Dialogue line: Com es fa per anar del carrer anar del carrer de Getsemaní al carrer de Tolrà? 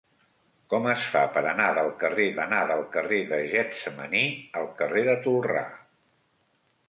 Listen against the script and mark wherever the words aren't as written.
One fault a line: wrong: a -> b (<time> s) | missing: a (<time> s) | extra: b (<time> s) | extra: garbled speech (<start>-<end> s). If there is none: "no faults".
no faults